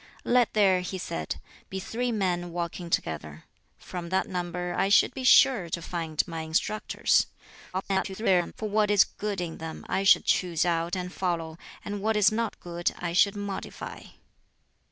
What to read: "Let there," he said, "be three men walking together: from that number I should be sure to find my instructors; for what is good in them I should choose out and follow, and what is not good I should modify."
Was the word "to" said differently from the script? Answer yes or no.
no